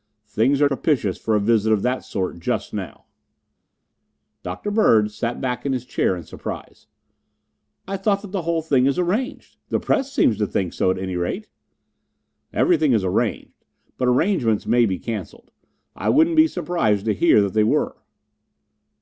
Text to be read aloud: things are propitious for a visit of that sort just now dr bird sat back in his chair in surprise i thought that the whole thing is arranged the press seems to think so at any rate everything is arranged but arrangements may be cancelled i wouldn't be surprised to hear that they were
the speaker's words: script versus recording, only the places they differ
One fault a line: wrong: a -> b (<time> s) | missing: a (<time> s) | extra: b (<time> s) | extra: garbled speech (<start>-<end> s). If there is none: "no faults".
no faults